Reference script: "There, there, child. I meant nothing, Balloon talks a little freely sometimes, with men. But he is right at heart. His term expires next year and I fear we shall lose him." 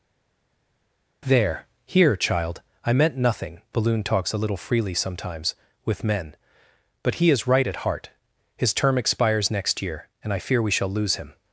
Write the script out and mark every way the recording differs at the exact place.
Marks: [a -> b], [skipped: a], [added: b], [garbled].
"There, [there, -> here] child. I meant nothing, Balloon talks a little freely sometimes, with men. But he is right at heart. His term expires next year and I fear we shall lose him."